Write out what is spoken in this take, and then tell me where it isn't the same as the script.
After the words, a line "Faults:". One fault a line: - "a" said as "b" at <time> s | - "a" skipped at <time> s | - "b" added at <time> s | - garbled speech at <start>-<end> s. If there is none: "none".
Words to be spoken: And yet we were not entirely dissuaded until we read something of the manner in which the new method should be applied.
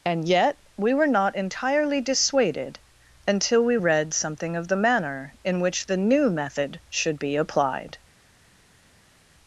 And yet we were not entirely dissuaded until we read something of the manner in which the new method should be applied.
Faults:
none